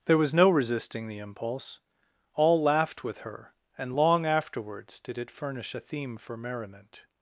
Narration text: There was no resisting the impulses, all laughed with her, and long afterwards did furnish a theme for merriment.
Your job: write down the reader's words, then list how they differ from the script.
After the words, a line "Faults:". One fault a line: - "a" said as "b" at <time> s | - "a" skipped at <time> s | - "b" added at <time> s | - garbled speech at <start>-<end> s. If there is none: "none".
There was no resisting the impulse, all laughed with her, and long afterwards did it furnish a theme for merriment.
Faults:
- "impulses" said as "impulse" at 1.2 s
- "it" added at 5.2 s